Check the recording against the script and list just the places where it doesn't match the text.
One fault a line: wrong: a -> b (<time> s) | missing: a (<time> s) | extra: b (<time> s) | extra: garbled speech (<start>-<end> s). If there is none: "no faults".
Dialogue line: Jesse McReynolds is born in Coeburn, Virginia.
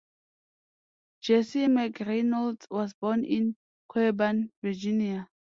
wrong: is -> was (2.7 s)